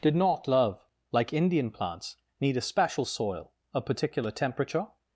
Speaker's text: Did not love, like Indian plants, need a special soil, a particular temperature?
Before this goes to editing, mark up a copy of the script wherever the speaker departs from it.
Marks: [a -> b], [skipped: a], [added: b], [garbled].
Did not love, like Indian plants, need a special soil, a particular temperature?